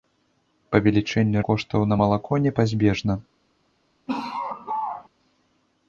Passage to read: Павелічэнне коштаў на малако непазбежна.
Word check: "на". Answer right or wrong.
right